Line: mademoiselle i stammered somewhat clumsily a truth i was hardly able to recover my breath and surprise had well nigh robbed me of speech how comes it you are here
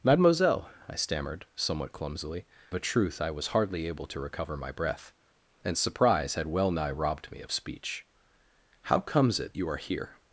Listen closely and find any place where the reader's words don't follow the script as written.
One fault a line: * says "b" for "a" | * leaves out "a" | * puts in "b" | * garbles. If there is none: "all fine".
all fine